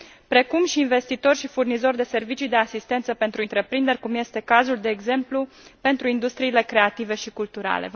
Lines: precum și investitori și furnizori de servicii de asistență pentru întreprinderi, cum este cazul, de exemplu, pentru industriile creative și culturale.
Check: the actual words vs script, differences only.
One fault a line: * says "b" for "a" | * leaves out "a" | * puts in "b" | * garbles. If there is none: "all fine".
all fine